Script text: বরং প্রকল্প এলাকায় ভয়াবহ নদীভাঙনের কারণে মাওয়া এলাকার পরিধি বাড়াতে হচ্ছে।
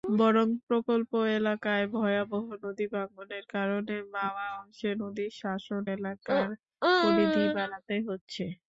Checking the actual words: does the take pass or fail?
fail